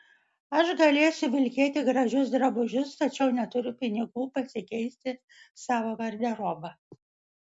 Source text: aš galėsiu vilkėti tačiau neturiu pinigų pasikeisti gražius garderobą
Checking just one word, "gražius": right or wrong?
wrong